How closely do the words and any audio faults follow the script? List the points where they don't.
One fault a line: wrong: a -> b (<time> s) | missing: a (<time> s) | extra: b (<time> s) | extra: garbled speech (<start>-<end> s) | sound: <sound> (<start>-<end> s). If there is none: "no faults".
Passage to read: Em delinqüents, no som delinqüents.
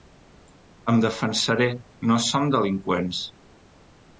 wrong: delinqüents -> defensaré (1.1 s)